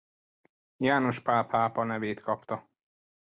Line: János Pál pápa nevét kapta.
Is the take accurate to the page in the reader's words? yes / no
yes